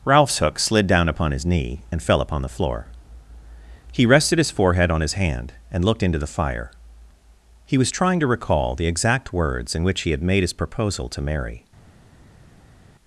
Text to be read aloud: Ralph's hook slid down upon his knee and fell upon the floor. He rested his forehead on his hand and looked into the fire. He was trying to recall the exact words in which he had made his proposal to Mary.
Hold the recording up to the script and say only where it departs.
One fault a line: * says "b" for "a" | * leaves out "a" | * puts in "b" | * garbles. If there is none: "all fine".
all fine